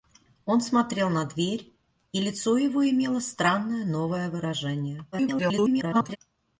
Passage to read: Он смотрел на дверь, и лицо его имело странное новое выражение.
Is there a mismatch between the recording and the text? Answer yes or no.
yes